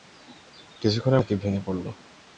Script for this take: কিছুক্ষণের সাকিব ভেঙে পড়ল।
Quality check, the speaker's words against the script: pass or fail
pass